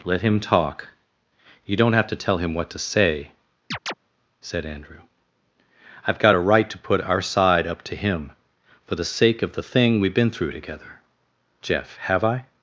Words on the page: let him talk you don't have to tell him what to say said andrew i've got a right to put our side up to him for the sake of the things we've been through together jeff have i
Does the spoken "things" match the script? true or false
false